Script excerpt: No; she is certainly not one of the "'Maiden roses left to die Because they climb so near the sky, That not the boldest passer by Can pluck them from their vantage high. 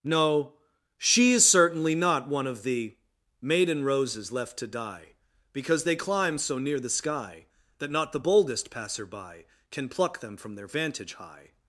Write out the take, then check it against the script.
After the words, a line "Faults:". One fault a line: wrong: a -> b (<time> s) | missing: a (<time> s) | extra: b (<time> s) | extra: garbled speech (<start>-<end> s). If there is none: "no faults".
No; she is certainly not one of the "'Maiden roses left to die Because they climb so near the sky, That not the boldest passer by Can pluck them from their vantage high.
Faults:
no faults